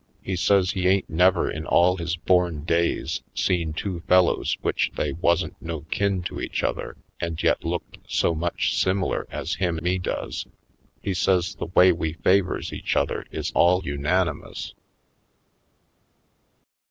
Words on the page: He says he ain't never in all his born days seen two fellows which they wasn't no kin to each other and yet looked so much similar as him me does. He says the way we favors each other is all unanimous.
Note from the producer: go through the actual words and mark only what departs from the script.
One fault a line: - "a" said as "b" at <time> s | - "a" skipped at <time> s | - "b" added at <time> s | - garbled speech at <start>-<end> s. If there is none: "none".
none